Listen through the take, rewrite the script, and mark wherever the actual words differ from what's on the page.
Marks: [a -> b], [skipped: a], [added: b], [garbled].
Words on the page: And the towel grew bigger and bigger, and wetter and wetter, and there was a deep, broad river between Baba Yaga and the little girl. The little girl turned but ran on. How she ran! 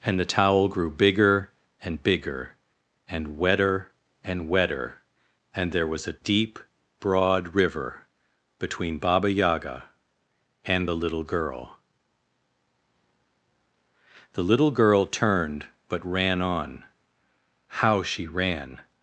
And the towel grew bigger and bigger, and wetter and wetter, and there was a deep, broad river between Baba Yaga and the little girl. The little girl turned but ran on. How she ran!